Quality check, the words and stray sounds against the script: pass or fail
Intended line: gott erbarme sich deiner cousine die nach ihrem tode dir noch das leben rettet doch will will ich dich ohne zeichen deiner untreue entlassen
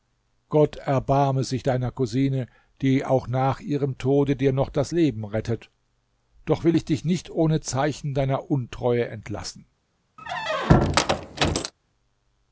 fail